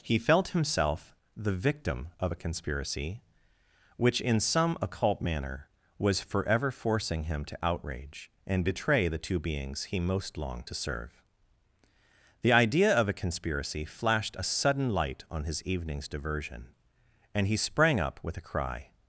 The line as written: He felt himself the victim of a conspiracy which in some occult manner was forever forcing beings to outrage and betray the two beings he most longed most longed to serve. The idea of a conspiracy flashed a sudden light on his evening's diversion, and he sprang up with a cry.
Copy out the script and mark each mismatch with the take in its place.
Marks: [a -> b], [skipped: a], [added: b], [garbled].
He felt himself the victim of a conspiracy which in some occult manner was forever forcing [beings -> him] to outrage and betray the two beings he most longed [skipped: most longed] to serve. The idea of a conspiracy flashed a sudden light on his evening's diversion, and he sprang up with a cry.